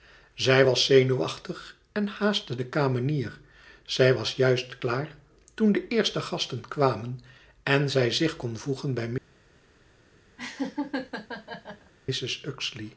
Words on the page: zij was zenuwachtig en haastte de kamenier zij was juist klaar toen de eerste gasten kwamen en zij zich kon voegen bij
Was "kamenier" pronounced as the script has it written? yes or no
yes